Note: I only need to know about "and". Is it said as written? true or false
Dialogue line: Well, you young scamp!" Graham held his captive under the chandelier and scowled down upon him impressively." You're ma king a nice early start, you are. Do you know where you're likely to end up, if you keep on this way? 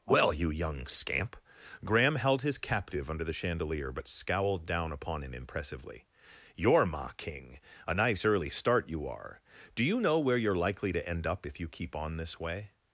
false